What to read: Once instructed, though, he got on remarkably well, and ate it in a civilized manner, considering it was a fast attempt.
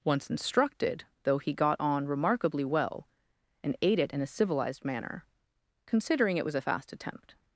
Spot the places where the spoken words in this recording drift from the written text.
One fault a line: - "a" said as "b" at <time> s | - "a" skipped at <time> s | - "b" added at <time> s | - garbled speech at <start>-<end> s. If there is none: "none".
none